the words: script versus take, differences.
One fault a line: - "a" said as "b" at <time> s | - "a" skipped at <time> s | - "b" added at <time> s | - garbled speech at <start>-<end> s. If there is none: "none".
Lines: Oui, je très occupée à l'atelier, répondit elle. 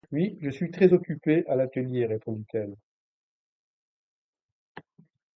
- "suis" added at 0.5 s